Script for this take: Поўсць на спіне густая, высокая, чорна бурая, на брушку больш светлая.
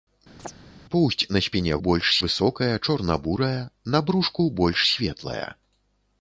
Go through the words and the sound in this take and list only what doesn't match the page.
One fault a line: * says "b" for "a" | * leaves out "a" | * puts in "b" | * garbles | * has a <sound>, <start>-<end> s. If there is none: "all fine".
* has a chirp, 0.4-0.5 s
* says "больш" for "густая"